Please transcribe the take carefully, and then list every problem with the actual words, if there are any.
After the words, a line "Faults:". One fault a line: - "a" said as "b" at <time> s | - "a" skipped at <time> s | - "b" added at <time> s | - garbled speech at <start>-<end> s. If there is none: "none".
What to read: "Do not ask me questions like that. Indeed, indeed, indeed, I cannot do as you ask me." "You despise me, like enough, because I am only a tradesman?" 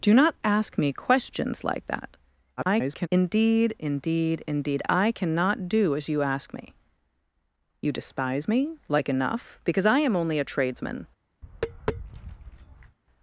"Do not ask me questions like that. [garbled] Indeed, indeed, indeed, I cannot do as you ask me." "You despise me, like enough, because I am only a tradesman?"
Faults:
- garbled speech at 2.6-3.1 s